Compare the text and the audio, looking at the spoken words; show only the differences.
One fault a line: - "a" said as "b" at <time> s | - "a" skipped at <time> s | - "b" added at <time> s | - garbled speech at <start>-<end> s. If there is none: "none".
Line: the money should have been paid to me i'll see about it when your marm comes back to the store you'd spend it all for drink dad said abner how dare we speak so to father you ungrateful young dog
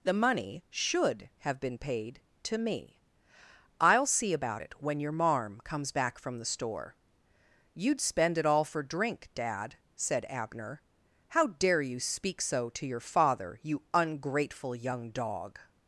- "to" said as "from" at 6.2 s
- "we" said as "you" at 11.8 s
- "your" added at 12.9 s